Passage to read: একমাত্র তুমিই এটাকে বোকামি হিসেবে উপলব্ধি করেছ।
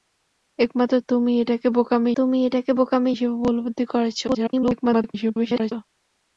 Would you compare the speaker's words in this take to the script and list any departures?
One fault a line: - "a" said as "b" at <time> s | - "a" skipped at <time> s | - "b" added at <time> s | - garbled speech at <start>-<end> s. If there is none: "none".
- "তুমিই এটাকে বোকামি" added at 2.2 s
- garbled speech at 4.3-5.7 s